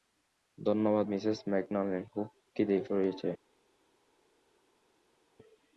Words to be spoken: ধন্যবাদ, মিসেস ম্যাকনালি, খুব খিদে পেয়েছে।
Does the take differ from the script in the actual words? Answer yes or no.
no